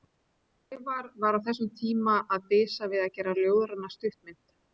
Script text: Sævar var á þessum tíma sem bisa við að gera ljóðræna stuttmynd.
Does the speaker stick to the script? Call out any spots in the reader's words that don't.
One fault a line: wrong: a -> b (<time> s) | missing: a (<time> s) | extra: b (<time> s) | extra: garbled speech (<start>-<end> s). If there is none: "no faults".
wrong: sem -> að (2.4 s)